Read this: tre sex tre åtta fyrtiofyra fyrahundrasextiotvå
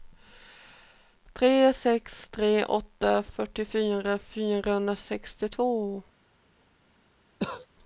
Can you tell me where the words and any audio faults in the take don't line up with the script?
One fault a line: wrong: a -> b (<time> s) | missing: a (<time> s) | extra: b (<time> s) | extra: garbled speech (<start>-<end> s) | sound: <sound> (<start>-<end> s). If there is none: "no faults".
sound: cough (7.4-7.7 s)